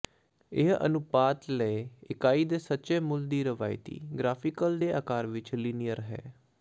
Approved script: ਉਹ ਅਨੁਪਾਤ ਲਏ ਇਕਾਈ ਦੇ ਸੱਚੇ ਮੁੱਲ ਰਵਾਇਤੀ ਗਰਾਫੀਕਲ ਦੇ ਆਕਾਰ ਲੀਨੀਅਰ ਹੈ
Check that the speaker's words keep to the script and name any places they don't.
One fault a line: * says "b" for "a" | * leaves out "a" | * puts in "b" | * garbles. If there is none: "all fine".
* says "ਇਹ" for "ਉਹ"
* puts in "ਦੀ"
* puts in "ਵਿਚ"